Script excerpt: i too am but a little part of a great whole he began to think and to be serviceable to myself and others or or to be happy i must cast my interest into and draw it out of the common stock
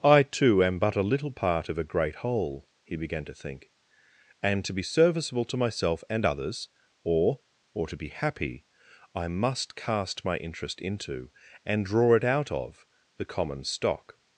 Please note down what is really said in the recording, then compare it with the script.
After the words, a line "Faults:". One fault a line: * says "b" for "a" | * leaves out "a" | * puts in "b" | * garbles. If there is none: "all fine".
i too am but a little part of a great whole he began to think and to be serviceable to myself and others or or to be happy i must cast my interest into and draw it out of the common stock
Faults:
all fine